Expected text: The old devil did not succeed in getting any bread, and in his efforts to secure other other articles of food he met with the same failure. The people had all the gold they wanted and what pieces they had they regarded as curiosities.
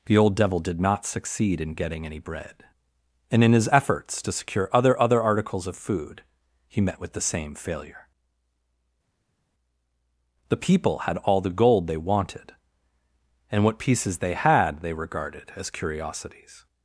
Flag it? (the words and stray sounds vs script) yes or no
no